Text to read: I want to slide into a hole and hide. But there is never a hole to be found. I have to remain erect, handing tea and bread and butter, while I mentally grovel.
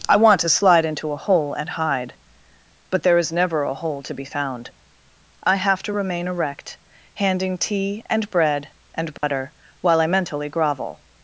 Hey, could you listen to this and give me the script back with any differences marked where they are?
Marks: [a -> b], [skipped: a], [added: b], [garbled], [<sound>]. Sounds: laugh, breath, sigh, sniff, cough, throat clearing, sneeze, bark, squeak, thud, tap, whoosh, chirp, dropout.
I want to slide into a hole and hide. But there is never a hole to be found. I have to remain erect, handing tea and bread and butter, [dropout] while I mentally grovel.